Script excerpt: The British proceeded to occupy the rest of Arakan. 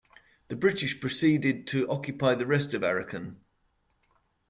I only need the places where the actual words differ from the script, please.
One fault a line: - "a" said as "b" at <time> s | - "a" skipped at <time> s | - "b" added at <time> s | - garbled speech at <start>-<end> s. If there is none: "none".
none